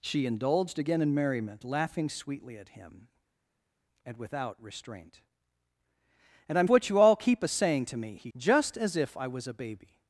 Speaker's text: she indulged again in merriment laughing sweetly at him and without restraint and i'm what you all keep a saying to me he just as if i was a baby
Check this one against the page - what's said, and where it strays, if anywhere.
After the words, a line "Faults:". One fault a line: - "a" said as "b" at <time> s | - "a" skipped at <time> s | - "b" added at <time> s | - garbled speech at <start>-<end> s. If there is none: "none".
she indulged again in merriment laughing sweetly at him and without restraint and i'm what you all keep a saying to me he just as if i was a baby
Faults:
none